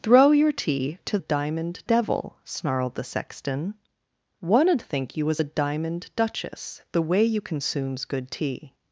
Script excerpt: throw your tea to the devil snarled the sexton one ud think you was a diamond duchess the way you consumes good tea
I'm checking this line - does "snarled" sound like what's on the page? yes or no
yes